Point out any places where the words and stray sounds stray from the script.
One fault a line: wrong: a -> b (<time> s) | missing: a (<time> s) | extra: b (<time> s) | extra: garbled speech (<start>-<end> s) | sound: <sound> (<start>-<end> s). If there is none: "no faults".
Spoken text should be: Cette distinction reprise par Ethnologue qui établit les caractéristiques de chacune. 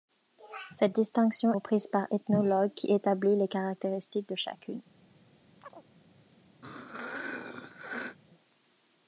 sound: chirp (5.6-5.8 s)
sound: throat clearing (6.6-8.2 s)